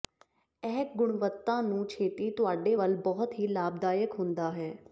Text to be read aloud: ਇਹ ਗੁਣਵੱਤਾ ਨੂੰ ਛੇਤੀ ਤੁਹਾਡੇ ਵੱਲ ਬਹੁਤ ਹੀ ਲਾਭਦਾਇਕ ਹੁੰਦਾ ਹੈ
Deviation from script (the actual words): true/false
false